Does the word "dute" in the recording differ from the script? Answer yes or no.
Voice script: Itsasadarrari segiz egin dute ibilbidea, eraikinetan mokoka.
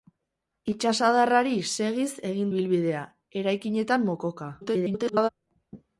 yes